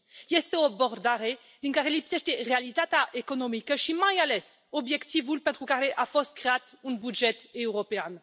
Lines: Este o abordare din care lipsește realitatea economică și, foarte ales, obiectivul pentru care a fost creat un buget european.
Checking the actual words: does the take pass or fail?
fail